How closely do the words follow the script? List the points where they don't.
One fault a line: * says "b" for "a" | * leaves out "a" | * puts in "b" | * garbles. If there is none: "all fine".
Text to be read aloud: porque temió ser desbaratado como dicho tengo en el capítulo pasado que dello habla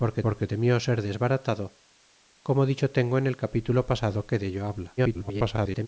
* puts in "porque"
* garbles